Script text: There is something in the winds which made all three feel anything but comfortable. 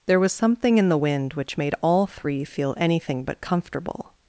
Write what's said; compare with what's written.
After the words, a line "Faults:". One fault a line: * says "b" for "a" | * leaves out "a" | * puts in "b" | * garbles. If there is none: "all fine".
There was something in the wind which made all three feel anything but comfortable.
Faults:
* says "was" for "is"
* says "wind" for "winds"